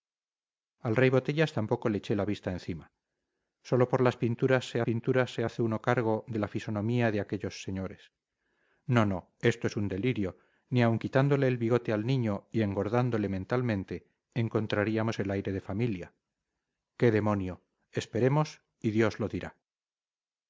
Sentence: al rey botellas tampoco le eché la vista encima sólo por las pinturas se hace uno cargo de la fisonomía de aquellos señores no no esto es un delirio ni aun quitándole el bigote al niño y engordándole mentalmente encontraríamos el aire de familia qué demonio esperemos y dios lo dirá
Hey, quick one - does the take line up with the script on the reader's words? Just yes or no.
no